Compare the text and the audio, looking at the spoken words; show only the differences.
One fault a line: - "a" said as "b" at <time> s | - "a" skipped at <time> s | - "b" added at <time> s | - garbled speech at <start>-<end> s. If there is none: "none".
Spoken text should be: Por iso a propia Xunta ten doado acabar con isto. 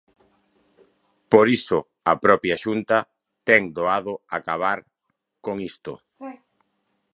none